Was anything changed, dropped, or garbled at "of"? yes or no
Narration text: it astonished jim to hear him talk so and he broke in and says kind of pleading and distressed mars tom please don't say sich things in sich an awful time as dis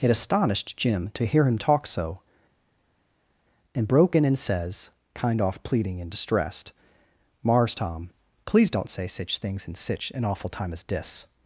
yes